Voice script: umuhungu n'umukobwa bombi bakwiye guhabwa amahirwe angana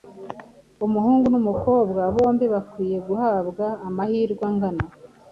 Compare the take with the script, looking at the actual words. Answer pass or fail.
pass